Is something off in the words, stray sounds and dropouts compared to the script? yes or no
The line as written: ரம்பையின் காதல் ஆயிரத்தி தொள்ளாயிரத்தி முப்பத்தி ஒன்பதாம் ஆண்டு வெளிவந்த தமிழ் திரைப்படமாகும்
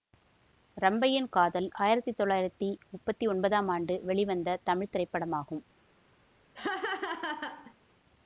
yes